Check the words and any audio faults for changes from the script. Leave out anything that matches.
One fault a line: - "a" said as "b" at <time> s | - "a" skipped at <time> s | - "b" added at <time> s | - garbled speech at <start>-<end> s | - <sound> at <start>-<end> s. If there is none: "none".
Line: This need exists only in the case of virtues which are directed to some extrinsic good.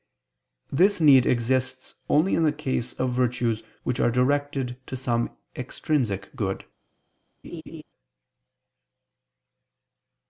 - laugh at 7.4-7.8 s